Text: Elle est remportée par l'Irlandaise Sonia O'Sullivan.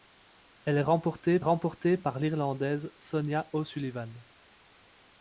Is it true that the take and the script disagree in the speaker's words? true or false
true